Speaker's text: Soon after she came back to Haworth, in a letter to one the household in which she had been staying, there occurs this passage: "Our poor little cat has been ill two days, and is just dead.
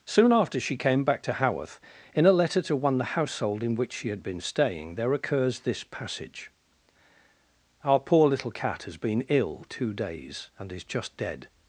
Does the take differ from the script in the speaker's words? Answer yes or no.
no